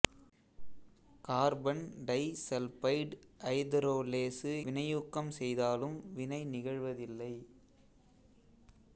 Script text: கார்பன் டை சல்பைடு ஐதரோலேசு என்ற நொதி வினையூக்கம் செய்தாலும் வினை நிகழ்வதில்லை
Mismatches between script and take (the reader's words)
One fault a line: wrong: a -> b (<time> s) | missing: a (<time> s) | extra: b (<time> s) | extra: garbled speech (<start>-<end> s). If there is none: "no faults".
missing: என்ற நொதி (4.5 s)